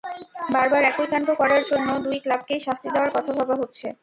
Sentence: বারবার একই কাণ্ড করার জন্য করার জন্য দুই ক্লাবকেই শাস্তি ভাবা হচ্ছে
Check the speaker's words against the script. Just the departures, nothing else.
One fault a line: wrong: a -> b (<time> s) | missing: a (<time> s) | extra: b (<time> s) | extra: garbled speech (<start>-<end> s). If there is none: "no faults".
missing: করার জন্য (1.9 s)
extra: দেওয়ার কথা (2.9 s)